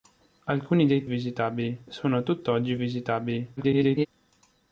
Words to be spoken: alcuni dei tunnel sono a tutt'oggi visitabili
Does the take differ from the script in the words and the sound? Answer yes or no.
yes